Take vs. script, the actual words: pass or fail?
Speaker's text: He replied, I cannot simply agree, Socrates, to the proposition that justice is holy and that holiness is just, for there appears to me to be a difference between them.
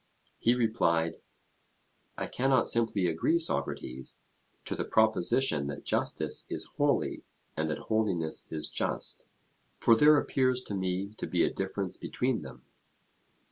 pass